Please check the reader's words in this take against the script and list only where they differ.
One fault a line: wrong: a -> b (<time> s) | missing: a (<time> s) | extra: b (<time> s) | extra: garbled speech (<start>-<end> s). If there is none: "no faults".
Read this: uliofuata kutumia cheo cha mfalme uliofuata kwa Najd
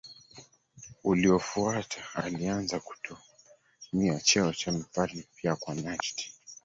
extra: alianza (2.1 s)
wrong: uliofuata -> pia (5.3 s)